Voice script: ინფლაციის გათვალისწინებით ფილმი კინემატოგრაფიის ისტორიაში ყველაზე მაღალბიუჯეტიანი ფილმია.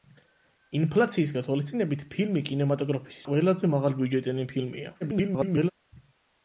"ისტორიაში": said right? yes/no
no